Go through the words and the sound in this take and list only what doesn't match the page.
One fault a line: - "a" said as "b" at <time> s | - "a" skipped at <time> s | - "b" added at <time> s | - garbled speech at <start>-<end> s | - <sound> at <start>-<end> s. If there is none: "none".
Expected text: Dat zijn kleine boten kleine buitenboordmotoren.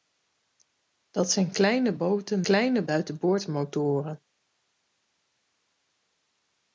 none